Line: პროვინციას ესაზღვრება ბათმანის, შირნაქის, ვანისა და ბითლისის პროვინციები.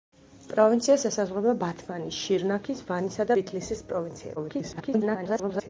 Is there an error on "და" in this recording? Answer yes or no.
yes